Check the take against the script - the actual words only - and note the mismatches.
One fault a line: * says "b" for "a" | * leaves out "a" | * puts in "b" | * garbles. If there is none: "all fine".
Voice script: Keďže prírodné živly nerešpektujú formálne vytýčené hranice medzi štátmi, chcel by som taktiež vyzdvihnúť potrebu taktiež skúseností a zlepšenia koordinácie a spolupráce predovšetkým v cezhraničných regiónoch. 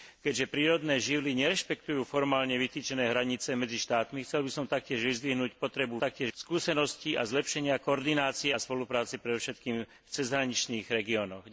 all fine